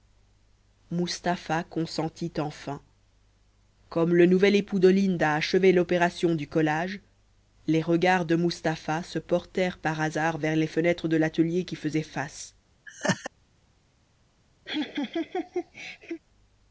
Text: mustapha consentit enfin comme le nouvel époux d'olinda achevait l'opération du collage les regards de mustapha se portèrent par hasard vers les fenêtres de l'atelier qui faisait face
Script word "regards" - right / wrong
right